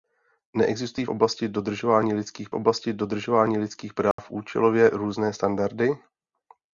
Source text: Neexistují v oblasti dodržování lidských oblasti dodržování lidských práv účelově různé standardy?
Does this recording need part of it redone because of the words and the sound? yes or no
yes